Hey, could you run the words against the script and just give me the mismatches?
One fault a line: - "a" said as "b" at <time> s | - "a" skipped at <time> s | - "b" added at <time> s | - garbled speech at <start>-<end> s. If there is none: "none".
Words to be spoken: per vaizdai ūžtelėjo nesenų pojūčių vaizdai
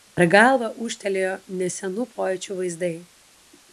- "vaizdai" said as "galvą" at 0.3 s